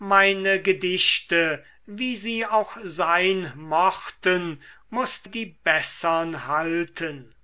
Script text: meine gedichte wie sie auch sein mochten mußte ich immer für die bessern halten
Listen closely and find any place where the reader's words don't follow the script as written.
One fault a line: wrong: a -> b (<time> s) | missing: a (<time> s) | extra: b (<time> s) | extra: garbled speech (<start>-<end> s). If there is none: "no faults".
missing: ich immer für (5.3 s)